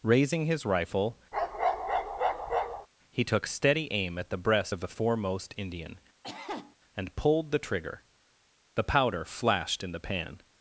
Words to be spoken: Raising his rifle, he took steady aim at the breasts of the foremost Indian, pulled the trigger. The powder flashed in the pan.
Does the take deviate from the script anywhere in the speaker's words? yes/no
yes